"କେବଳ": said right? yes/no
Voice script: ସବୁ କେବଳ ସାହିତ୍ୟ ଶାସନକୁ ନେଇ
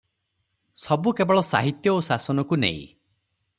yes